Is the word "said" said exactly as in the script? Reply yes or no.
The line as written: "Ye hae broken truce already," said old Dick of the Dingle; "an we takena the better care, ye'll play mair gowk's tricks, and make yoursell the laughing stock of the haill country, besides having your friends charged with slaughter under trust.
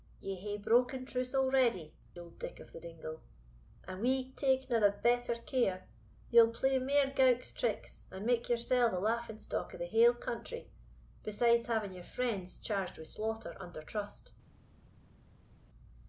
no